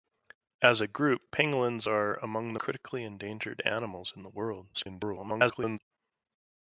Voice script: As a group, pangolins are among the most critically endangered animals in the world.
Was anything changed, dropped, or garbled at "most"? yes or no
yes